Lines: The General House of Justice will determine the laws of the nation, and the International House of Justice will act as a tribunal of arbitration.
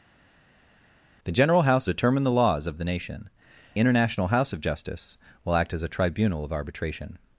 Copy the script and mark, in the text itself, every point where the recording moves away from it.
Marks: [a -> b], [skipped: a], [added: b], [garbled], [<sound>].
The General House [skipped: of Justice will] determine the laws of the nation, [skipped: and the] International House of Justice will act as a tribunal of arbitration.